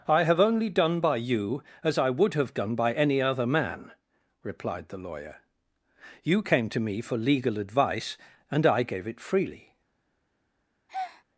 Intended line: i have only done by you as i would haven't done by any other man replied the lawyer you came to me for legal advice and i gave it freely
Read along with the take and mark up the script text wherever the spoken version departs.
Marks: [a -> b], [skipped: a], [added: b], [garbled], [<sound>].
i have only done by you as i would [haven't -> have] done by any other man replied the lawyer you came to me for legal advice and i gave it freely [breath]